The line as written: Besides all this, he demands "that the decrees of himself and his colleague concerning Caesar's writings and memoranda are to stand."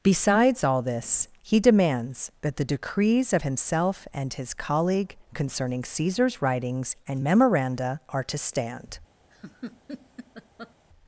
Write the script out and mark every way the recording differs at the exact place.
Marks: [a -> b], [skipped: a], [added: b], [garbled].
Besides all this, he demands "that the decrees of himself and his colleague concerning Caesar's writings and memoranda are to stand."